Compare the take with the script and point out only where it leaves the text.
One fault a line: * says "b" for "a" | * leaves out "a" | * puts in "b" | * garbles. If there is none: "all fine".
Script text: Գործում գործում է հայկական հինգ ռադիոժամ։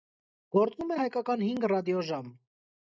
* leaves out "գործում"